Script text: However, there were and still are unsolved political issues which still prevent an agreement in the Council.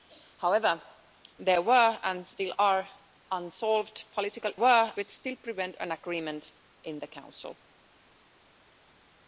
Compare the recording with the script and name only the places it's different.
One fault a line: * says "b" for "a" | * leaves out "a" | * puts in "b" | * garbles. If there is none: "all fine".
* says "were" for "issues"